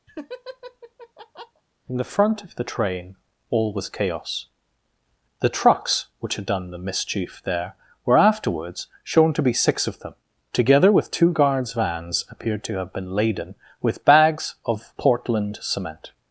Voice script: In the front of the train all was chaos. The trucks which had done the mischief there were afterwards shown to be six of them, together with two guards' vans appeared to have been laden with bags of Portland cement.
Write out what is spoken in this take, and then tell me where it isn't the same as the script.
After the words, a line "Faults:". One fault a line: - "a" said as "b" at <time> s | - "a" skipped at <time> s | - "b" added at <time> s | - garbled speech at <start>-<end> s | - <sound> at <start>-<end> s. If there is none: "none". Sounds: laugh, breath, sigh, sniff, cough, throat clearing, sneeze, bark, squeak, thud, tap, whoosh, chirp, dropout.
In the front of the train all was chaos. The trucks which had done the mischief there were afterwards shown to be six of them, together with two guards' vans appeared to have been laden with bags of Portland cement.
Faults:
- laugh at 0.1-1.6 s